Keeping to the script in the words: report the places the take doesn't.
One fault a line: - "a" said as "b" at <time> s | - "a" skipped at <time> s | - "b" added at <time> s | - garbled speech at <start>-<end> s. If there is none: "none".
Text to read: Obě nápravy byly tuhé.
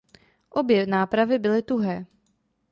none